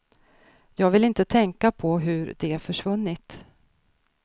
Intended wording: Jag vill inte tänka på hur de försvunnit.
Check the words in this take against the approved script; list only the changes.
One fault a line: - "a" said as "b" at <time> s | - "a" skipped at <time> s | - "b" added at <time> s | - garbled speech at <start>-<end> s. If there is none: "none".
none